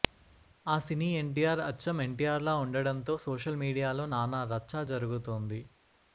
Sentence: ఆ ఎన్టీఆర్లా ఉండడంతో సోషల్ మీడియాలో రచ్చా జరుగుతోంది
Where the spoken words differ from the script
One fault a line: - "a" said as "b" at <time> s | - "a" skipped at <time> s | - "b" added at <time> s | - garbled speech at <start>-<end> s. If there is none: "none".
- "సినీ ఎన్టీఆర్ అచ్చం" added at 0.8 s
- "నానా" added at 4.1 s